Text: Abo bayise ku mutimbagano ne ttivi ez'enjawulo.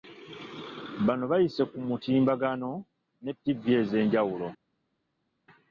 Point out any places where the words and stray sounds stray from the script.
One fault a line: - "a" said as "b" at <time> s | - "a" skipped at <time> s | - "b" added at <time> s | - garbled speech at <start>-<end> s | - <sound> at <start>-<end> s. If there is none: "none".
- "Abo" said as "Bano" at 1.1 s